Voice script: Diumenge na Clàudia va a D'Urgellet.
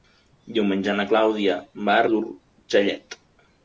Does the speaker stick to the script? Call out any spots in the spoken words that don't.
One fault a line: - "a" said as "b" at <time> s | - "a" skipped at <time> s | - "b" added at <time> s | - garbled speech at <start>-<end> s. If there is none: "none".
none